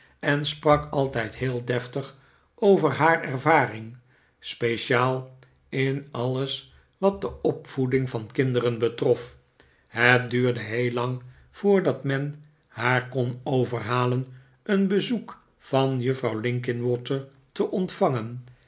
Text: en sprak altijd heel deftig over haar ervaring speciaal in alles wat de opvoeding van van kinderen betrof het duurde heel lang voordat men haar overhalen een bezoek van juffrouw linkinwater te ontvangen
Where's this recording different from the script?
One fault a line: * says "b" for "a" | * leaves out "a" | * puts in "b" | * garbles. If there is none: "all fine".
* leaves out "van"
* puts in "kon"